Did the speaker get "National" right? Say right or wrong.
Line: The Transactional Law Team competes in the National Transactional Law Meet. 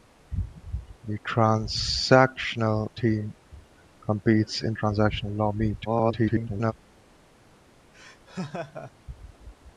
wrong